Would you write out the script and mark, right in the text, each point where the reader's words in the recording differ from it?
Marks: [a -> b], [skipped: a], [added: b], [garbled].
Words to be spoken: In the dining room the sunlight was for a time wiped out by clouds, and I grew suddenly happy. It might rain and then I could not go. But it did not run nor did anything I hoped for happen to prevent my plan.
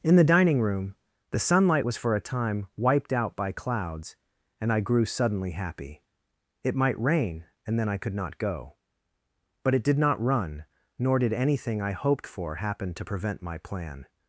In the dining room the sunlight was for a time wiped out by clouds, and I grew suddenly happy. It might rain and then I could not go. But it did not run nor did anything I hoped for happen to prevent my plan.